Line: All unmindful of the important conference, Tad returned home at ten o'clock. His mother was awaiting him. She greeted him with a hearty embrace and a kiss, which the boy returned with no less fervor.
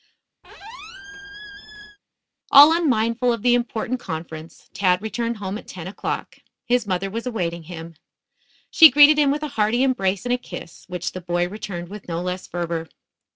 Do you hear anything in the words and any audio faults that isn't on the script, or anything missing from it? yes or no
yes